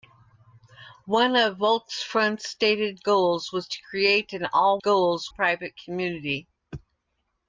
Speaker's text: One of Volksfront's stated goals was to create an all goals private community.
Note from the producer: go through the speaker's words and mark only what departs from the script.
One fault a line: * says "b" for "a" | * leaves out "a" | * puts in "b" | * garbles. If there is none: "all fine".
all fine